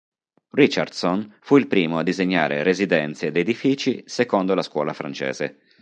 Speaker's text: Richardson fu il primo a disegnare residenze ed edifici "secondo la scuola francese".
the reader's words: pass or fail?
pass